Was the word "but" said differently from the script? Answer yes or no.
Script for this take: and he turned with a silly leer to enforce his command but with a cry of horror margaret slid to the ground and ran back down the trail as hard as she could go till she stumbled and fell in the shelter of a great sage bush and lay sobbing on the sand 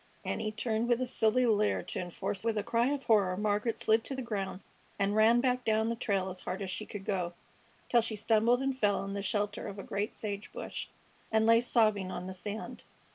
yes